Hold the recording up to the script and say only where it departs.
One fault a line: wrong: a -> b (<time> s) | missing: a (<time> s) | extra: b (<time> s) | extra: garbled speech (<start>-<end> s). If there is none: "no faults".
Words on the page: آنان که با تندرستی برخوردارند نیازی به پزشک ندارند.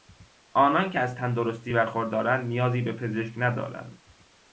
wrong: با -> از (1.0 s)